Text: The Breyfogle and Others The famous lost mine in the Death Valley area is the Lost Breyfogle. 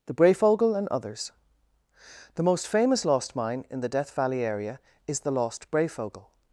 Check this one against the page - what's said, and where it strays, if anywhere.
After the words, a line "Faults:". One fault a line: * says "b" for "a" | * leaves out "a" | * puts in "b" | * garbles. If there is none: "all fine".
The Breyfogle and Others The most famous lost mine in the Death Valley area is the Lost Breyfogle.
Faults:
* puts in "most"